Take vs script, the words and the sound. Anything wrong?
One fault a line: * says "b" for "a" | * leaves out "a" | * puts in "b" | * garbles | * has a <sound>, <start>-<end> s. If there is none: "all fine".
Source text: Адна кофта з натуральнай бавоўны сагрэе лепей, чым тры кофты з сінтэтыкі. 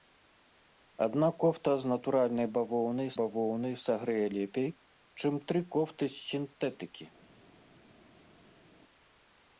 * puts in "бавоўны"